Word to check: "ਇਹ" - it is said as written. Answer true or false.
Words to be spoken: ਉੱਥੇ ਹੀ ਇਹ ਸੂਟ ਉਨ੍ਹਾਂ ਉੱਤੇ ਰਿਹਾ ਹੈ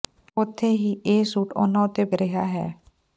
true